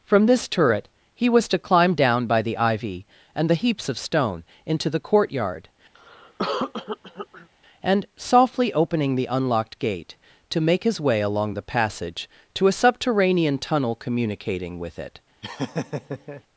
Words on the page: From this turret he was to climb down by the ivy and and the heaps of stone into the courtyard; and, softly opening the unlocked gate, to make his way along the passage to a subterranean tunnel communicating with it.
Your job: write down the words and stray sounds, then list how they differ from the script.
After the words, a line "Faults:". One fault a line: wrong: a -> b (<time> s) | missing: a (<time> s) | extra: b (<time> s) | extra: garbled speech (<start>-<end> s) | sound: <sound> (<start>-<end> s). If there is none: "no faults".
From this turret he was to climb down by the ivy and the heaps of stone into the courtyard; and, softly opening the unlocked gate, to make his way along the passage to a subterranean tunnel communicating with it.
Faults:
missing: and (3.5 s)
sound: cough (5.9-7.5 s)
sound: laugh (15.4-16.4 s)